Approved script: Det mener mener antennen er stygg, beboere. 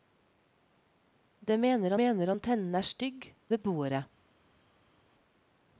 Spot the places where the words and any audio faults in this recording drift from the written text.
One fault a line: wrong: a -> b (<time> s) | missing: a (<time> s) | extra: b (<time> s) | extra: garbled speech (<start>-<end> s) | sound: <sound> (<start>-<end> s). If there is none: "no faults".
no faults